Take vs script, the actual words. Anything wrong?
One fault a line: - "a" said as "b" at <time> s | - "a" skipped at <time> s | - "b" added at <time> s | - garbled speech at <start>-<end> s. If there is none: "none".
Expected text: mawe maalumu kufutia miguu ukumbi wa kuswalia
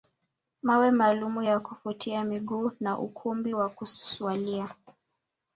- "ya" added at 1.4 s
- "na" added at 2.8 s